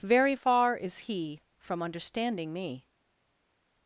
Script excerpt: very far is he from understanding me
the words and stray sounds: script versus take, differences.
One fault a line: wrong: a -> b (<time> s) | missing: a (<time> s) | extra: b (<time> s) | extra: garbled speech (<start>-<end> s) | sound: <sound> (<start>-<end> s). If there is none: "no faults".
no faults